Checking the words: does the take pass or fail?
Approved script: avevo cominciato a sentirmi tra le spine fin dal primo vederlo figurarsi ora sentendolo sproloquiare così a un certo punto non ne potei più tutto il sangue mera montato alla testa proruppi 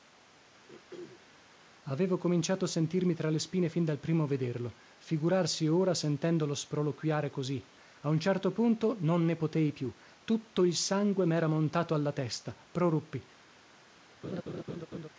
pass